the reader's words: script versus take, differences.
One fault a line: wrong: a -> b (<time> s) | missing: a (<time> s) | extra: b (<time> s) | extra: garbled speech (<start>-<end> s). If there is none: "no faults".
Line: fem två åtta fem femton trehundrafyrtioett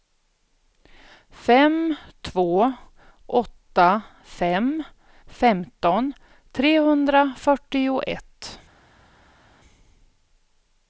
no faults